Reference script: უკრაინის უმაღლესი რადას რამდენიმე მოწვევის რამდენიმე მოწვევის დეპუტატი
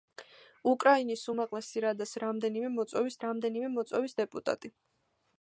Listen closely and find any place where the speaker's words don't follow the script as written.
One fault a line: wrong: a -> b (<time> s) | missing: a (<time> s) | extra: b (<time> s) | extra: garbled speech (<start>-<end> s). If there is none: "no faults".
no faults